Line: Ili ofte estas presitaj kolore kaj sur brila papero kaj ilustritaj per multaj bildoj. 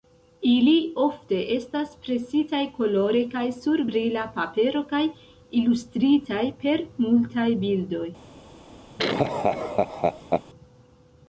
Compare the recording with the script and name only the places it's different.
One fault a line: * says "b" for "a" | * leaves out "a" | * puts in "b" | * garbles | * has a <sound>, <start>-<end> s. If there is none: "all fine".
* has a laugh, 9.0-10.4 s